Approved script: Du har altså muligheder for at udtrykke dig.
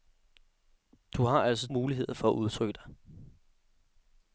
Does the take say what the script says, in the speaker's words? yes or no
yes